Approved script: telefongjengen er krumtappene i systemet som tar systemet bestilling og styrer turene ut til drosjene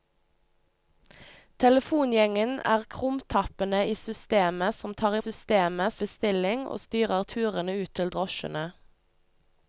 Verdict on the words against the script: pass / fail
pass